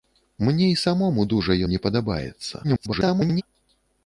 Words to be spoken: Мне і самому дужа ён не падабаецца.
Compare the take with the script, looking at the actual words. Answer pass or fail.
fail